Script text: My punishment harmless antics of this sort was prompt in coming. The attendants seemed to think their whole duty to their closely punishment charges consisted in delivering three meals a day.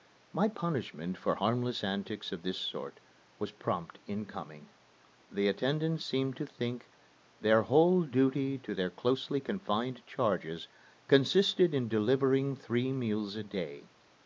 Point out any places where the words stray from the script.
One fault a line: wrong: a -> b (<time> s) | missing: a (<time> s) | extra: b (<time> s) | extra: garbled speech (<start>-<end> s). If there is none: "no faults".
extra: for (1.1 s)
wrong: punishment -> confined (9.4 s)